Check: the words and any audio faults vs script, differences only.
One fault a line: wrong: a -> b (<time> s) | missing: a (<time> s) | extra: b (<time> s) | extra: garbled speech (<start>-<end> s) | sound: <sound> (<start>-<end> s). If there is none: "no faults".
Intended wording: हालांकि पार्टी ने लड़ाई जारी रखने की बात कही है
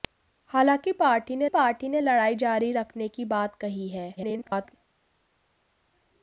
extra: पार्टी ने (1.5 s)
extra: garbled speech (4.2-4.7 s)